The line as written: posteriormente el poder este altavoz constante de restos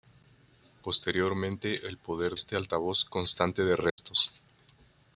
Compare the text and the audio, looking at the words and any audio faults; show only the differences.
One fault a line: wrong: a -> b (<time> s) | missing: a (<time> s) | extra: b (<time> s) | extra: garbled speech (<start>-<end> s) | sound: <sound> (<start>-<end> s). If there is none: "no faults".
sound: dropout (3.9-4.0 s)